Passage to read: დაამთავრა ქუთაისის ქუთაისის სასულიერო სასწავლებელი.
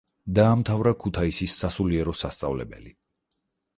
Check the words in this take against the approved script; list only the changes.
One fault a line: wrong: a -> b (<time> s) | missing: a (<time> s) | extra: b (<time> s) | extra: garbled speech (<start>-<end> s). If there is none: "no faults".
missing: ქუთაისის (1.6 s)